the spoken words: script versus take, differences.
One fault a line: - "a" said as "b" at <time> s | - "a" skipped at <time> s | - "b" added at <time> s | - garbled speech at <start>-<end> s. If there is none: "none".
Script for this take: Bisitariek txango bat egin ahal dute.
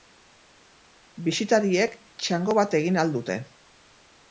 none